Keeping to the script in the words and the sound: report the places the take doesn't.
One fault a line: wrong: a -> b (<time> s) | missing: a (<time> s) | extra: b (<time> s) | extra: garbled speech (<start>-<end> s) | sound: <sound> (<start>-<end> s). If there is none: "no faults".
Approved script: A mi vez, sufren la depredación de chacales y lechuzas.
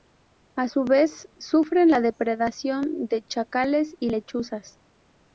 wrong: mi -> su (0.7 s)